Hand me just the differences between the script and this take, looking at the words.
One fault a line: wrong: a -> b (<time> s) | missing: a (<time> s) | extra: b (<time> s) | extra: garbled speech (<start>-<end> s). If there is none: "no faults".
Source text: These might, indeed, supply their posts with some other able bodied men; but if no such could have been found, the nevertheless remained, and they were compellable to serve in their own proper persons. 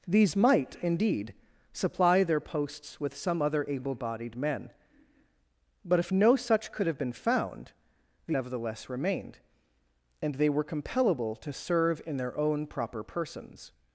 no faults